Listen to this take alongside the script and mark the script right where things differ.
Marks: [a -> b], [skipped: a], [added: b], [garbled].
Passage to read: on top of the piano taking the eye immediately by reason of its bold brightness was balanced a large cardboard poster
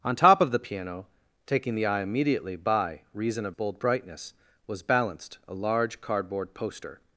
on top of the piano taking the eye immediately by reason of [skipped: its] bold brightness was balanced a large cardboard poster